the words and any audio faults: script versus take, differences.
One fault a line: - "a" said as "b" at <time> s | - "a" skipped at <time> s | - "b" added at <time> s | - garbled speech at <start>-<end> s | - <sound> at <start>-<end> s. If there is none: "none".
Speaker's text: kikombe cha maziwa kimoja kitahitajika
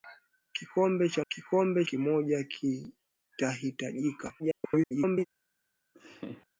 - "maziwa" said as "kikombe" at 1.3 s
- garbled speech at 4.4-5.3 s
- laugh at 5.9-6.5 s